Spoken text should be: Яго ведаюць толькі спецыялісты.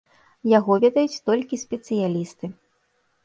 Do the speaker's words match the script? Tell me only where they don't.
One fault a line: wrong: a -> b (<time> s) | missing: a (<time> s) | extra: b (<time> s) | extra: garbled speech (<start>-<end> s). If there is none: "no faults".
no faults